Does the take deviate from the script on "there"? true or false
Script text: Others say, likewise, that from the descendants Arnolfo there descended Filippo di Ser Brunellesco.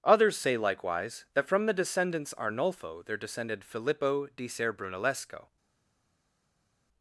false